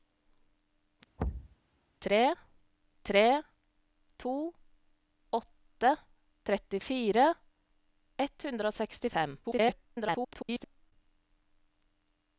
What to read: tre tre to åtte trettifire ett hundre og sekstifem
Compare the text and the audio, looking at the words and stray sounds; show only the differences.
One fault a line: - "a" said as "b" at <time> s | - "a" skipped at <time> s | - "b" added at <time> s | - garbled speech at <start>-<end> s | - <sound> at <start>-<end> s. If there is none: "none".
- thud at 1.2-1.6 s
- garbled speech at 9.4-10.9 s